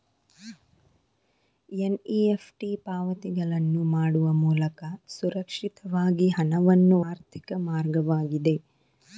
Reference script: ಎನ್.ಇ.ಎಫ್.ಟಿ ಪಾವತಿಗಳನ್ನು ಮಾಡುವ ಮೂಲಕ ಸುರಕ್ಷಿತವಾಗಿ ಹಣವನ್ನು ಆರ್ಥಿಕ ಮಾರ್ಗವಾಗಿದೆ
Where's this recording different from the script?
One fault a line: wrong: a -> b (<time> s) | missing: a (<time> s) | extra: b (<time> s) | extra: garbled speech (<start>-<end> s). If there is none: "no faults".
no faults